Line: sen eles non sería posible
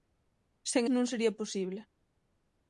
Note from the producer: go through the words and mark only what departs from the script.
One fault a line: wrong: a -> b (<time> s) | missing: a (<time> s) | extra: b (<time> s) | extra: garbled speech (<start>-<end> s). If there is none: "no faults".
missing: eles (0.8 s)